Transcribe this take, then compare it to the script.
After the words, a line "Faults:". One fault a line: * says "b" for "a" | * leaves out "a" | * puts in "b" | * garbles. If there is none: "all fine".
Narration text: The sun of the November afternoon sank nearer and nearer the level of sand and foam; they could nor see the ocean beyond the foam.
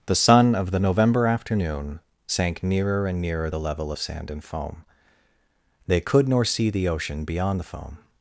The sun of the November afternoon sank nearer and nearer the level of sand and foam; they could nor see the ocean beyond the foam.
Faults:
all fine